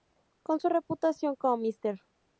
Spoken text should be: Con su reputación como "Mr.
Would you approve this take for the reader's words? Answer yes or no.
yes